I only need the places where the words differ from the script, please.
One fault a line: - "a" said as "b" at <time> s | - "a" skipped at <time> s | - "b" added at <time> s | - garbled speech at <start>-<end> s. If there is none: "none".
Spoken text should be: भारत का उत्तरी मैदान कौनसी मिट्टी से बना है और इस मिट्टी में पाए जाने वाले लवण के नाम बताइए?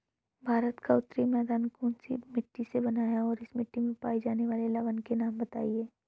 none